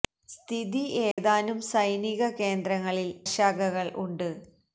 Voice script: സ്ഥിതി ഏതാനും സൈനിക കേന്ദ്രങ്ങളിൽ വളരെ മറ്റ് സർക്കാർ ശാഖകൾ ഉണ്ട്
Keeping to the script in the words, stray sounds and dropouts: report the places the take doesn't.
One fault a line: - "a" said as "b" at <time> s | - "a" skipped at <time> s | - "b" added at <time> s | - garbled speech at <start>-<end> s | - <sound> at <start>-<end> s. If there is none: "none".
- dropout at 1.1-1.2 s
- "വളരെ മറ്റ് സർക്കാർ" skipped at 3.1 s